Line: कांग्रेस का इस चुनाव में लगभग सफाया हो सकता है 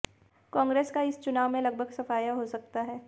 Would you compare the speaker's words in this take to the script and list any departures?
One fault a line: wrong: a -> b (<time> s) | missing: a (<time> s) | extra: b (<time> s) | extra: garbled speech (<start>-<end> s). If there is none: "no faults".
no faults